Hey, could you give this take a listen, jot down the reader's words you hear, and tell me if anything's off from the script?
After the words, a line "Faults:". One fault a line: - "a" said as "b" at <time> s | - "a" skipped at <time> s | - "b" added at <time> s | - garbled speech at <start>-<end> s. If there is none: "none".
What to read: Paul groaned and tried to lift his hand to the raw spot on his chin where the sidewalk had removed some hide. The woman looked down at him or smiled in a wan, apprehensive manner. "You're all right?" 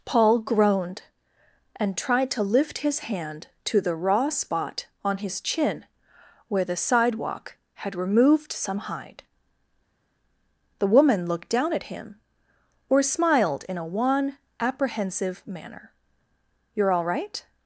Paul groaned and tried to lift his hand to the raw spot on his chin where the sidewalk had removed some hide. The woman looked down at him or smiled in a wan, apprehensive manner. "You're all right?"
Faults:
none